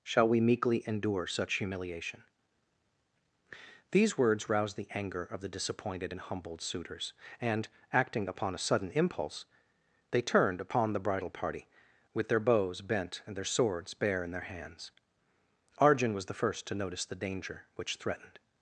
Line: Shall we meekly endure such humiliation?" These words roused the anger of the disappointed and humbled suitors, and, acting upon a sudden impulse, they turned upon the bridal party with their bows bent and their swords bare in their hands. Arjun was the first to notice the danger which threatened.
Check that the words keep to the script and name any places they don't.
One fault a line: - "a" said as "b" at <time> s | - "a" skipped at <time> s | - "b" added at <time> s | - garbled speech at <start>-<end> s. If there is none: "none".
none